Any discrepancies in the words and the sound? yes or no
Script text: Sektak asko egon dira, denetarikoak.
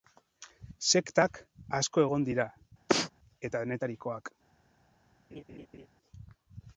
yes